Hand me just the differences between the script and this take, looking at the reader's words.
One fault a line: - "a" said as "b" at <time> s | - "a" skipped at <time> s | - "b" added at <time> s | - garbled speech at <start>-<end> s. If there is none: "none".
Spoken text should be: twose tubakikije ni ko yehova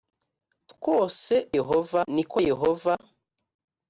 - "tubakikije" said as "yehova" at 1.6 s